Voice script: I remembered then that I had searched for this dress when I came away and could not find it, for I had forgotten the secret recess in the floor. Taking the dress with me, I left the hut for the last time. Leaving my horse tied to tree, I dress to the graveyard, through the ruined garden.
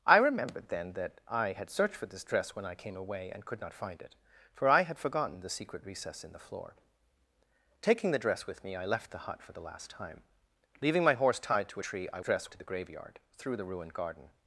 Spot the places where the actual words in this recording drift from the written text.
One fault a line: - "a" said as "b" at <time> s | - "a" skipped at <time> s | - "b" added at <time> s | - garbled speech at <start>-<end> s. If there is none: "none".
none